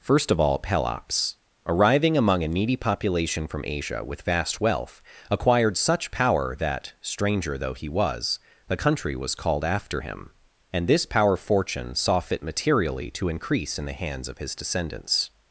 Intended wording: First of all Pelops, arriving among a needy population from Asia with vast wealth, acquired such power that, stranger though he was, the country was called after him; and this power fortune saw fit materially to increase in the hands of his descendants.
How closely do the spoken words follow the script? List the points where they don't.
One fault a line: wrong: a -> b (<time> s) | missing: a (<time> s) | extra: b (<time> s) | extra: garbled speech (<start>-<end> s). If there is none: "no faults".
no faults